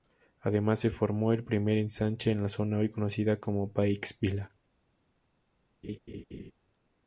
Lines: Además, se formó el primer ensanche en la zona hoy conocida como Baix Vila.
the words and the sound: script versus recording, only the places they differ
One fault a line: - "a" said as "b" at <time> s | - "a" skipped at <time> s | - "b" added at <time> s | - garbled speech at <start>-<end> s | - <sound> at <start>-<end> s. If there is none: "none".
- laugh at 5.8-6.5 s